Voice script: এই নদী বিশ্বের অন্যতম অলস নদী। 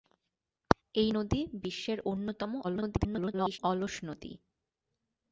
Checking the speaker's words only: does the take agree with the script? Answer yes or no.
no